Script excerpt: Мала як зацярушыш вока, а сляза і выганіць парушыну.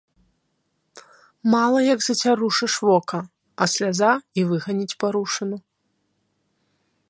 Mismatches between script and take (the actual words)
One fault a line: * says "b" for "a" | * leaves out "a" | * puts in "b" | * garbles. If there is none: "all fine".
all fine